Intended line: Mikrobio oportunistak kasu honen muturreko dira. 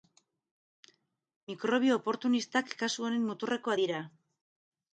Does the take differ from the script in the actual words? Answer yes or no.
no